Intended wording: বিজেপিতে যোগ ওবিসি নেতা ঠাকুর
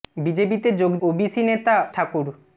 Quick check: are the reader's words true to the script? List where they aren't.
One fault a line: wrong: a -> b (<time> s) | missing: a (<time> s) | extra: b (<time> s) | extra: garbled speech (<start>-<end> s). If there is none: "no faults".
no faults